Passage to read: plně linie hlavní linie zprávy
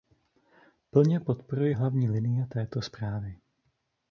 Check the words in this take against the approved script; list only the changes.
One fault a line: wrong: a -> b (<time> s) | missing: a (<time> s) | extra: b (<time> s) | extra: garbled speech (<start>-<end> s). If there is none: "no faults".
wrong: linie -> podporuji (1.2 s)
extra: této (2.5 s)